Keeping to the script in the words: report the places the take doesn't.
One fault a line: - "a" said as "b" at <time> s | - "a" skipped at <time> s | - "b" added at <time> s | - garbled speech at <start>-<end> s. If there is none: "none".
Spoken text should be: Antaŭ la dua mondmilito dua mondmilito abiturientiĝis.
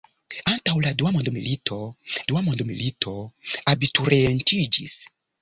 none